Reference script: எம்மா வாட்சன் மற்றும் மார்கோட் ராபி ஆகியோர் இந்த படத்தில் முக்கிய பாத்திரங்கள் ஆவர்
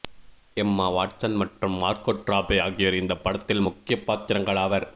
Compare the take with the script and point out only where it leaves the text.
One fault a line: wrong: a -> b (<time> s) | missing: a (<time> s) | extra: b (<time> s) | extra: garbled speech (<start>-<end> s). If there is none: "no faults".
no faults